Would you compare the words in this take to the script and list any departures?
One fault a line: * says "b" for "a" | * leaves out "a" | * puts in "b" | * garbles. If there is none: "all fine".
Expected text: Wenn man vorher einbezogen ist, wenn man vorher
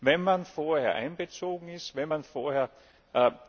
all fine